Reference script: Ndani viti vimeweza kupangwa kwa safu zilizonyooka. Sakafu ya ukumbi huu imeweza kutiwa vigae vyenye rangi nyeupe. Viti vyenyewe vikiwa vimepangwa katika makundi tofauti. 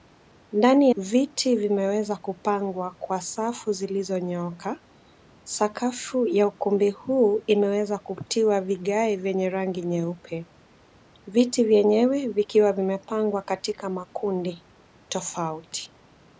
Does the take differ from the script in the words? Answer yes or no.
no